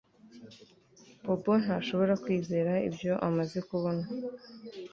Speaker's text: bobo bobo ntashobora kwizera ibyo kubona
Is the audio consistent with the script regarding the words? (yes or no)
no